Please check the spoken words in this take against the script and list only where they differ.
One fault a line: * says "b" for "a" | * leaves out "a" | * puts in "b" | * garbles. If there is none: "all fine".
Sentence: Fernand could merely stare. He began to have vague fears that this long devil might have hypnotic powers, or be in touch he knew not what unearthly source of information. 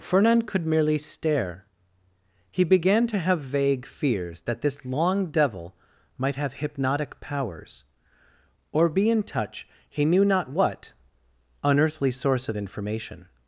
all fine